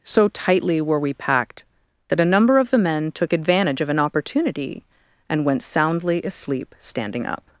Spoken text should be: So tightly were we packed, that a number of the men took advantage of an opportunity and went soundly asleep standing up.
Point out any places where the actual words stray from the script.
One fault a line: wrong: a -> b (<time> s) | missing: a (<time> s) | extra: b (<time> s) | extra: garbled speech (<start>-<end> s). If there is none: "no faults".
no faults